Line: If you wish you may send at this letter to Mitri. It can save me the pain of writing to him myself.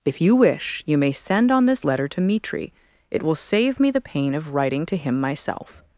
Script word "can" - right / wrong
wrong